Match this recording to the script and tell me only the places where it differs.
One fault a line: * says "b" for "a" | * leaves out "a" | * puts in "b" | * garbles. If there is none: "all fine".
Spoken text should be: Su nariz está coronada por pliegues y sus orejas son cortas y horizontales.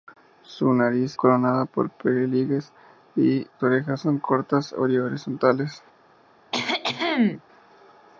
* leaves out "está"
* leaves out "sus"